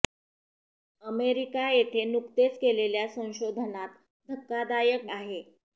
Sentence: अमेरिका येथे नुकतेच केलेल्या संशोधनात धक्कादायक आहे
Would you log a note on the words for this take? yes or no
no